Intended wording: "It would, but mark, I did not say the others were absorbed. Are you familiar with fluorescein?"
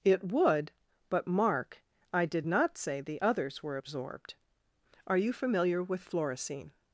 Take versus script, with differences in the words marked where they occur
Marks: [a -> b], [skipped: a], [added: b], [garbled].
"It would, but mark, I did not say the others were absorbed. Are you familiar with fluorescein?"